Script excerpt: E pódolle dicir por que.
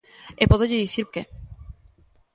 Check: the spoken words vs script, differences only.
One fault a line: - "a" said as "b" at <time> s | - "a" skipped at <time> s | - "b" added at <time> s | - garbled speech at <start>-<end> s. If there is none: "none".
- "por" skipped at 1.1 s